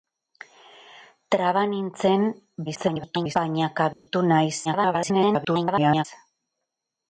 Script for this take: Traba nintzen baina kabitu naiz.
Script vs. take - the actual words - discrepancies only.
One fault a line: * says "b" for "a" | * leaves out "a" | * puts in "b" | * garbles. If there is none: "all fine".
* garbles
* garbles